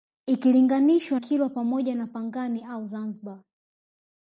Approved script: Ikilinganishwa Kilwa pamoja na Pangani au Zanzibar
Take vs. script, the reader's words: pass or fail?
pass